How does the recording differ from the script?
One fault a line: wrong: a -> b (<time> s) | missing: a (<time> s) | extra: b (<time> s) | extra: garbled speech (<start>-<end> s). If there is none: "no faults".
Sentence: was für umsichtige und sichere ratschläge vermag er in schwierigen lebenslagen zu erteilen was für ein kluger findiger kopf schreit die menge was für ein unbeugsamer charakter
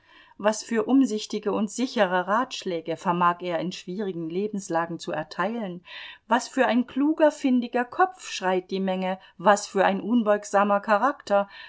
no faults